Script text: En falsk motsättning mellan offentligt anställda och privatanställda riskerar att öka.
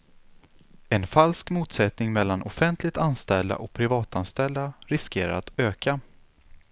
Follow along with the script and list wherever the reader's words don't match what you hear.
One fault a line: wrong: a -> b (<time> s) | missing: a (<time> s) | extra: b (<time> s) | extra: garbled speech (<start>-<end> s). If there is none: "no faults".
no faults